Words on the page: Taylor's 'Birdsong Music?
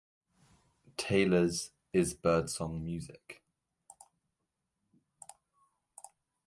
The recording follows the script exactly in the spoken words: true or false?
false